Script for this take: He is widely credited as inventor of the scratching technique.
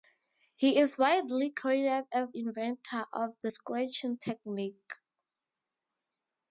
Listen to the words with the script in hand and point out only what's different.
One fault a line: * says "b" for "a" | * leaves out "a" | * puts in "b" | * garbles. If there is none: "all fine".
all fine